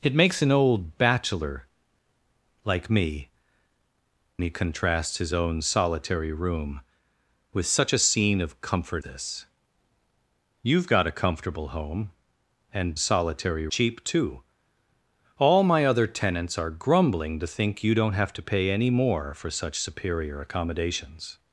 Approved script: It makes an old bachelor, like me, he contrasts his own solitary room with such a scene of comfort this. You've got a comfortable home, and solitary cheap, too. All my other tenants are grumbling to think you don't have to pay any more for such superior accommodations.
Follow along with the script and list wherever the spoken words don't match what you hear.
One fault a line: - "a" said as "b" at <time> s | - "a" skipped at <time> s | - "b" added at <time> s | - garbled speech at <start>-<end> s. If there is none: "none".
none